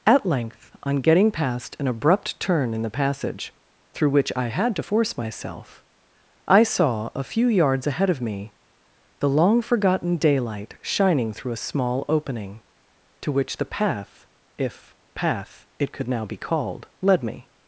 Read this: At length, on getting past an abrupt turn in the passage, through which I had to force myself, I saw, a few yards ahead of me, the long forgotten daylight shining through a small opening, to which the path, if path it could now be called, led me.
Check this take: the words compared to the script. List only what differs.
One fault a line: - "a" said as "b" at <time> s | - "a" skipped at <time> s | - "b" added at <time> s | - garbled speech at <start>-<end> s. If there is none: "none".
none